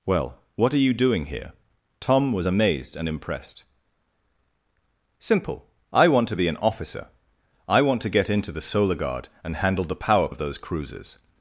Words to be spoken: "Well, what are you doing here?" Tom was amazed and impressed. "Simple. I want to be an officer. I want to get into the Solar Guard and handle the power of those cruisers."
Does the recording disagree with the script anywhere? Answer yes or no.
no